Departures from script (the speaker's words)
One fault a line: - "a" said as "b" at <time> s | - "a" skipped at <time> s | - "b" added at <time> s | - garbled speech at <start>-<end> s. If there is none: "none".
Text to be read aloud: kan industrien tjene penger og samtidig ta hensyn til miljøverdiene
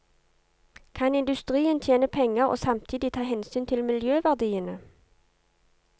none